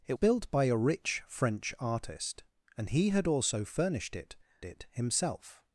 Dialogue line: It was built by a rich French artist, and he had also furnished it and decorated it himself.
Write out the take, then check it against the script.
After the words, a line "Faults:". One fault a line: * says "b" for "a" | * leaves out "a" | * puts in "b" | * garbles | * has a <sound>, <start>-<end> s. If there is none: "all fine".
It built by a rich French artist, and he had also furnished it it himself.
Faults:
* leaves out "was"
* leaves out "and decorated"